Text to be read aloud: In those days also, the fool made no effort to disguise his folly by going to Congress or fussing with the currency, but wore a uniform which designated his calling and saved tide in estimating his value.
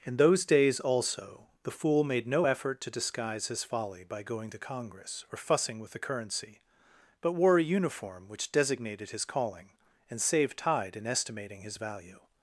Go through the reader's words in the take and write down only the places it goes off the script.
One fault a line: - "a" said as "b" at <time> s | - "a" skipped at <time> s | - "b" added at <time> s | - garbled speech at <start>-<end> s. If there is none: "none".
none